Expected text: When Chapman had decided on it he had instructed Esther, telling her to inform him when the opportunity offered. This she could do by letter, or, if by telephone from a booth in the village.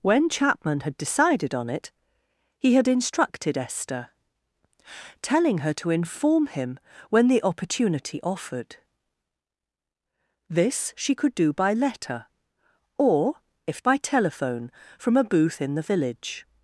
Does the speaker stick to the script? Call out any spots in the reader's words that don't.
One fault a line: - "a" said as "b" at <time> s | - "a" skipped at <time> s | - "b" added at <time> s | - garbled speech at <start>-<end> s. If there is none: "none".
none